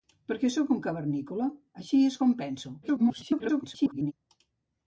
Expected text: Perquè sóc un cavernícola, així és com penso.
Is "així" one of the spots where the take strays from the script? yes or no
no